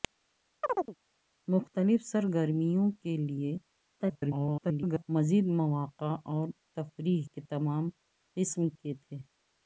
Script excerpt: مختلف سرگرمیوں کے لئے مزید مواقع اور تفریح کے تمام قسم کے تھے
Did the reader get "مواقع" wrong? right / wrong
right